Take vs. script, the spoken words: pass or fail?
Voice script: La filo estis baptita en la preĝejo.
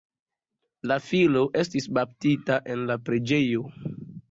pass